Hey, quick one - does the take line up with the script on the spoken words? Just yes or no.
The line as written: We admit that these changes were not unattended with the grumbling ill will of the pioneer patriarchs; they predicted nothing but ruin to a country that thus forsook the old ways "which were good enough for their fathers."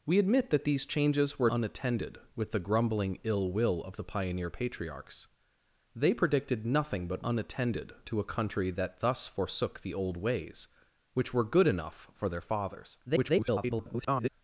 no